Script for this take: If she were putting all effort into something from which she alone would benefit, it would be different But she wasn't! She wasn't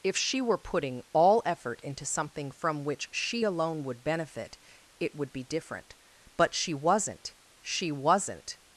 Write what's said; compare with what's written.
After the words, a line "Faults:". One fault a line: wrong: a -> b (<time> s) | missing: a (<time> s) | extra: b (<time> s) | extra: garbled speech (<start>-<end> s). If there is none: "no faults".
If she were putting all effort into something from which she alone would benefit, it would be different But she wasn't! She wasn't
Faults:
no faults